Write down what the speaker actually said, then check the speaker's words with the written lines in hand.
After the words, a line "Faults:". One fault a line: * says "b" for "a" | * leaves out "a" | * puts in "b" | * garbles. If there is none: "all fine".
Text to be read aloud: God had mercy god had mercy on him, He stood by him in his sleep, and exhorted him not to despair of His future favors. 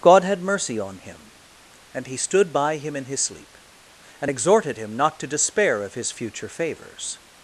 God had mercy on him, and He stood by him in his sleep, and exhorted him not to despair of His future favors.
Faults:
* leaves out "god had mercy"
* puts in "and"